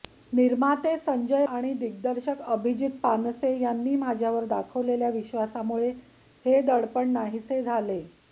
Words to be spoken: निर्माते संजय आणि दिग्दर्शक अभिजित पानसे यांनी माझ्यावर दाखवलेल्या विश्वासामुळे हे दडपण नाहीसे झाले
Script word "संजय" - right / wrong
right